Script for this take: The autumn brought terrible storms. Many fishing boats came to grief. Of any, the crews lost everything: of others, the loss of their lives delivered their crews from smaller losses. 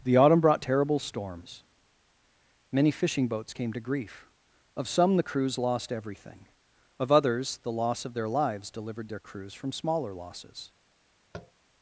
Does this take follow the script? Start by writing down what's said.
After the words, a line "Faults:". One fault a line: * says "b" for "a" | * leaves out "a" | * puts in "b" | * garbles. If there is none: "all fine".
The autumn brought terrible storms. Many fishing boats came to grief. Of some, the crews lost everything: of others, the loss of their lives delivered their crews from smaller losses.
Faults:
* says "some" for "any"